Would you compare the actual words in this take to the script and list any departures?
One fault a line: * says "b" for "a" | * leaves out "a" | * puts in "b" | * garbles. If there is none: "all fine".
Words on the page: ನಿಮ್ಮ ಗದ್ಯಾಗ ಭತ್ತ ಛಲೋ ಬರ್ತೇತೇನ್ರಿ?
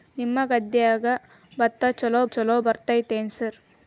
* puts in "ಛಲೋ"